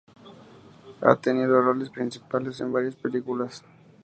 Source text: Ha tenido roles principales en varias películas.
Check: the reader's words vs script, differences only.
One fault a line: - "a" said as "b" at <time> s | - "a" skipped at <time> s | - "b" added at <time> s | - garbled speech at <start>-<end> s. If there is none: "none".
none